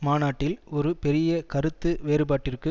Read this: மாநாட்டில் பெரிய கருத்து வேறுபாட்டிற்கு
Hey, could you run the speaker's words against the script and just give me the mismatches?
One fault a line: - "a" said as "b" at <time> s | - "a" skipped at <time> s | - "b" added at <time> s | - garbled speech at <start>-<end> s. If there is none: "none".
- "ஒரு" added at 0.7 s